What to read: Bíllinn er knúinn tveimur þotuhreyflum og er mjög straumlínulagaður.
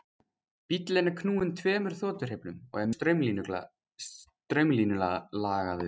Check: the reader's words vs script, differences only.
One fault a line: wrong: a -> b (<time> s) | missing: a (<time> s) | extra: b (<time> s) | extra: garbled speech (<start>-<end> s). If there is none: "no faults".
missing: mjög (2.9 s)